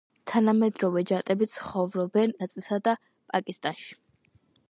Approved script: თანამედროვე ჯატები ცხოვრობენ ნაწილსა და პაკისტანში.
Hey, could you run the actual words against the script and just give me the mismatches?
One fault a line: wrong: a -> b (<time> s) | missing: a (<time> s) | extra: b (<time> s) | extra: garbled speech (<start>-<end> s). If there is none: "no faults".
no faults